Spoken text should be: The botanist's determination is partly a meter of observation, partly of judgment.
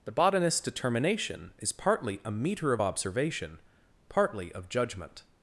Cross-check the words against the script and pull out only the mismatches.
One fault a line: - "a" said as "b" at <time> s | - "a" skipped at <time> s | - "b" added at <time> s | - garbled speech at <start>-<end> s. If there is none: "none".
none